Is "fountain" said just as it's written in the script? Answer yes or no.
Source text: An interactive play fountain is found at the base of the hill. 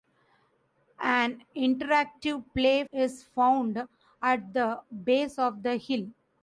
no